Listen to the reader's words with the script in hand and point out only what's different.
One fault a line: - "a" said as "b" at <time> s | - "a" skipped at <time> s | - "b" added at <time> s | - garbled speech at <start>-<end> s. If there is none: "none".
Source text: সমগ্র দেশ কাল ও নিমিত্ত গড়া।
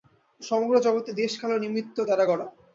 - "জগৎই" added at 0.8 s
- "দ্বারা" added at 2.1 s